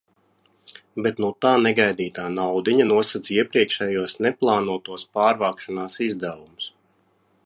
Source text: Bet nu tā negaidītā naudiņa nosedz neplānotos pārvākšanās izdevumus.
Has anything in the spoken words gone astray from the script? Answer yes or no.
yes